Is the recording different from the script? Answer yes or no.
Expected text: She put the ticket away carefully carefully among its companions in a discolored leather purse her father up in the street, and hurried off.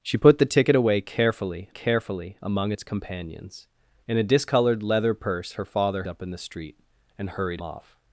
no